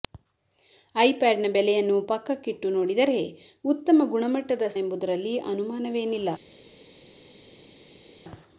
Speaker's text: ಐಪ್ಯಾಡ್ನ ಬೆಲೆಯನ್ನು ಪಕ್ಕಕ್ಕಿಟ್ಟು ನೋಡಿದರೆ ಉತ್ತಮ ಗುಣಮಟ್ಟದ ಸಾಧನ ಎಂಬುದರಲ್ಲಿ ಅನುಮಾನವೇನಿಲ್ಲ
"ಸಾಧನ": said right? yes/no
no